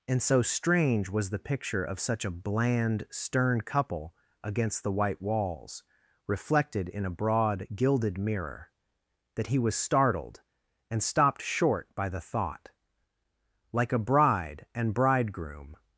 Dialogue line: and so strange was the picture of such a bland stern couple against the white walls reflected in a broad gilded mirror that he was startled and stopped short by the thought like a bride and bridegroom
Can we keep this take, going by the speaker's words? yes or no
yes